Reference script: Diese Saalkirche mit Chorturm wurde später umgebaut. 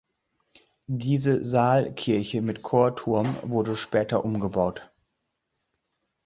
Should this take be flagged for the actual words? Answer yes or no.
no